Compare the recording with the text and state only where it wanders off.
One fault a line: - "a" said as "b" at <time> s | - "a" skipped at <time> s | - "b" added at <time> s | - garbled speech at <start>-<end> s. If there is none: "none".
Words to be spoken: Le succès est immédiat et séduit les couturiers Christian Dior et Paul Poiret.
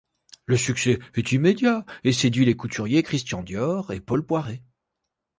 none